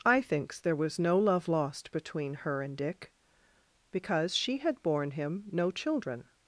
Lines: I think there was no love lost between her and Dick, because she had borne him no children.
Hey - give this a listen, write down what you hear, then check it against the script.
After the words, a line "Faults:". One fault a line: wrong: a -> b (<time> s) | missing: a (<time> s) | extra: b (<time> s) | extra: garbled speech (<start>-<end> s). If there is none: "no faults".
I thinks there was no love lost between her and Dick, because she had borne him no children.
Faults:
wrong: think -> thinks (0.2 s)